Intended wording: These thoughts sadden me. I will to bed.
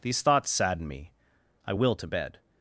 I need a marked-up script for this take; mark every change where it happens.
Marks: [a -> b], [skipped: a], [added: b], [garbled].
These thoughts sadden me. I will to bed.